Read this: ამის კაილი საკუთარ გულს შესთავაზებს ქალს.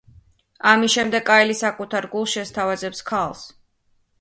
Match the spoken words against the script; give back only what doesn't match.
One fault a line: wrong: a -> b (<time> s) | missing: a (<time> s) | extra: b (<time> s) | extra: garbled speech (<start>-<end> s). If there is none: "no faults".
extra: შემდეგ (0.9 s)